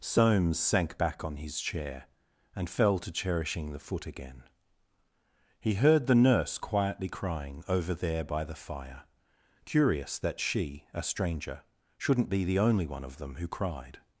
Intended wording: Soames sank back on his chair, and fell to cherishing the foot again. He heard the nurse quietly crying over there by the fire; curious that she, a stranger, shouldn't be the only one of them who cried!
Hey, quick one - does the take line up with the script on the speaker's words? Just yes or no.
yes